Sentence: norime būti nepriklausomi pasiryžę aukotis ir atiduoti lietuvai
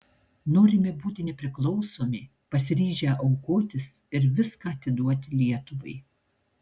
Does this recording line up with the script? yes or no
no